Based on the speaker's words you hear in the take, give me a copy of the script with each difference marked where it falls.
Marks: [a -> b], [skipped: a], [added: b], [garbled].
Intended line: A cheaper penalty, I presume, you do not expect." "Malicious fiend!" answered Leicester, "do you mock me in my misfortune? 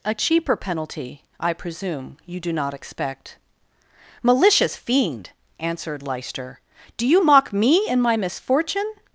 A cheaper penalty, I presume, you do not expect." "Malicious fiend!" answered Leicester, "do you mock me in my misfortune?